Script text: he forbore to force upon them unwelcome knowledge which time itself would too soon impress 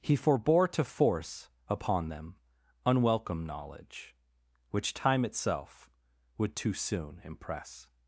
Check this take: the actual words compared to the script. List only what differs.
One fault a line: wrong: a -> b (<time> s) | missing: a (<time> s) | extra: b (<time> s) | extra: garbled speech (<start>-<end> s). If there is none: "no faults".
no faults